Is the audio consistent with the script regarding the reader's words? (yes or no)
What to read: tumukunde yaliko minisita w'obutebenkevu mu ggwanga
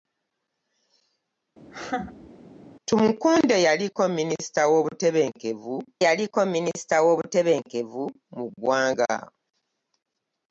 no